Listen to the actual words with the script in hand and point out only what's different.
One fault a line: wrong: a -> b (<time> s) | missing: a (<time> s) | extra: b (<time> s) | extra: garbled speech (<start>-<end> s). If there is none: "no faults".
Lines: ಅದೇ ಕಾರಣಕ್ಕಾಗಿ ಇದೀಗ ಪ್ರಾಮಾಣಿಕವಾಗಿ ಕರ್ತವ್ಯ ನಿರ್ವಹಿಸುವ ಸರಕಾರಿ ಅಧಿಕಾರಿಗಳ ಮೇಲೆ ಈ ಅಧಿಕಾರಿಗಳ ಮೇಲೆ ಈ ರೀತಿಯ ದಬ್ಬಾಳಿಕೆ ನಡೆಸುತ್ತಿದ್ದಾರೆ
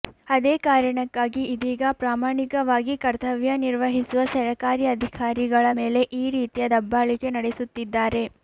missing: ಅಧಿಕಾರಿಗಳ ಮೇಲೆ ಈ (6.3 s)